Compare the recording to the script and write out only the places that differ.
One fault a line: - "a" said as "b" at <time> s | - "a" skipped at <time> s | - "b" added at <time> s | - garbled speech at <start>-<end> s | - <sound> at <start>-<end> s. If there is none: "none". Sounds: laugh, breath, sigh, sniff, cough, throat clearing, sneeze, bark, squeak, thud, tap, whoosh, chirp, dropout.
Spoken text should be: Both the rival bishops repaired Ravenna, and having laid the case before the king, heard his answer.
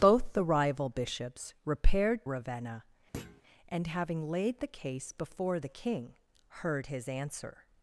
- thud at 3.1-3.4 s